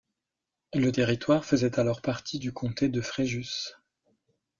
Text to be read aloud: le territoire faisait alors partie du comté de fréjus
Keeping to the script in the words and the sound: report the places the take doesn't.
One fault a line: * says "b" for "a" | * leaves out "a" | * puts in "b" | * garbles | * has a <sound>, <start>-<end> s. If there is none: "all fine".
all fine